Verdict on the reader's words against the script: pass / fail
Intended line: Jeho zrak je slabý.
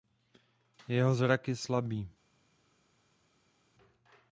pass